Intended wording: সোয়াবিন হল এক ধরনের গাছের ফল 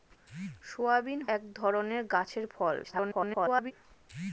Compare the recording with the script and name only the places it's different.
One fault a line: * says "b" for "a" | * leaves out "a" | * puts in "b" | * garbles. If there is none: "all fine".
* leaves out "হল"
* garbles